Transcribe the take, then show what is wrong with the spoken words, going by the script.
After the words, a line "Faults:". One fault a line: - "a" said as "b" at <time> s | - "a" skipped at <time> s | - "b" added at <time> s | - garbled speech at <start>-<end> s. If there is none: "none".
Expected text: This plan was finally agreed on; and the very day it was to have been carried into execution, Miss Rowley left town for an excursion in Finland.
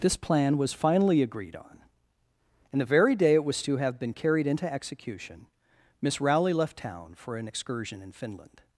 This plan was finally agreed on; and the very day it was to have been carried into execution, Miss Rowley left town for an excursion in Finland.
Faults:
none